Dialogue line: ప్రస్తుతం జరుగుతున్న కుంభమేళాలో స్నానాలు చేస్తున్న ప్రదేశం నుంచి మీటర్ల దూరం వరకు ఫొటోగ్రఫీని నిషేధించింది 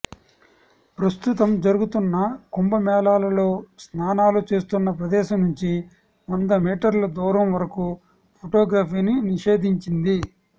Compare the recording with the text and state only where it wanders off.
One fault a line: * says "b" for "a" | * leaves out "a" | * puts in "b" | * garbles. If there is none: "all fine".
* puts in "వంద"